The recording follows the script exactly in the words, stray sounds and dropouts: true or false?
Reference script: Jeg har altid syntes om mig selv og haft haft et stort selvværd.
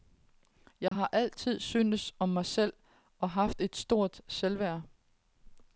false